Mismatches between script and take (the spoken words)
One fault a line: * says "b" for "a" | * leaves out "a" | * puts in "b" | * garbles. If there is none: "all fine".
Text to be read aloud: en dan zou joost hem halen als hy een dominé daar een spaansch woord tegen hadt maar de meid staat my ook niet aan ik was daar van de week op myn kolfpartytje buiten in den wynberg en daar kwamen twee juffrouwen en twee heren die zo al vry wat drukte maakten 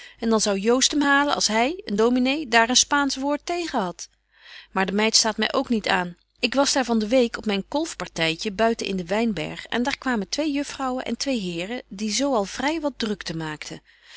all fine